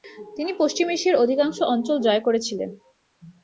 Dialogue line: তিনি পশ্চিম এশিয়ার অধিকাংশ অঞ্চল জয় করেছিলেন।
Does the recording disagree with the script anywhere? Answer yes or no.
no